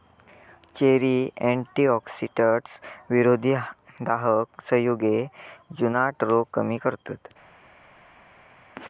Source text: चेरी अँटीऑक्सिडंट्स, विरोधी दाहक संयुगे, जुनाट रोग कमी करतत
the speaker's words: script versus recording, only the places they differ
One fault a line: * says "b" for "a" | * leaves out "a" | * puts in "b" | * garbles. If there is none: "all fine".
all fine